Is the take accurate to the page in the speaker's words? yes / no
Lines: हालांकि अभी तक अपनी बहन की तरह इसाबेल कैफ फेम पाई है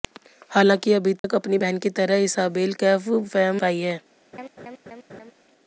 yes